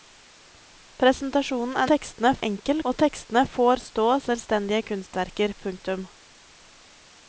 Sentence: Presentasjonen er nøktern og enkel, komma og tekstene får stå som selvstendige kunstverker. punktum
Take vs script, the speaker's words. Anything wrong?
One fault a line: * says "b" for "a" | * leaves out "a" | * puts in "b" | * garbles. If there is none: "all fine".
* says "tekstene" for "nøktern"
* leaves out "komma"
* leaves out "som"